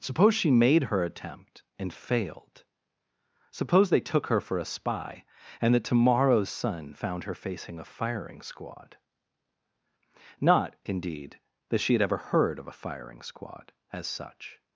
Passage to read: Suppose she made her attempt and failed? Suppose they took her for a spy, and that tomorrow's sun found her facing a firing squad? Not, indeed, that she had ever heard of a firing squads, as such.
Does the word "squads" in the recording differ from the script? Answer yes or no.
yes